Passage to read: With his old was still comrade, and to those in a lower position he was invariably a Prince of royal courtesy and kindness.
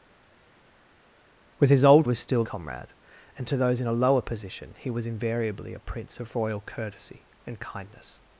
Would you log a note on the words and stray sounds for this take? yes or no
no